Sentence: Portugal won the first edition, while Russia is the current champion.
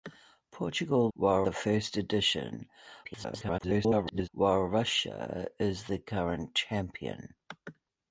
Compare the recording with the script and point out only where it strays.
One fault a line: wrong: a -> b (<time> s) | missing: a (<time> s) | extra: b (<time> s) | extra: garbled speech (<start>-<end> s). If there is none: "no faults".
wrong: won -> while (1.1 s)
extra: garbled speech (3.0-4.3 s)